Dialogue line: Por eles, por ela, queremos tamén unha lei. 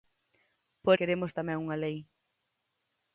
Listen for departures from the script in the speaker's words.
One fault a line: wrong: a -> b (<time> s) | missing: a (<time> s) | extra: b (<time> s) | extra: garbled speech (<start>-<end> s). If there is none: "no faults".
missing: eles por ela (1.0 s)